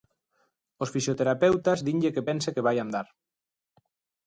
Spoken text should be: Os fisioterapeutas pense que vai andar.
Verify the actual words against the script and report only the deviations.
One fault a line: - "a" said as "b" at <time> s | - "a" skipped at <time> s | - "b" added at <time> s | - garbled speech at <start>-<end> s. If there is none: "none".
- "dinlle que" added at 1.9 s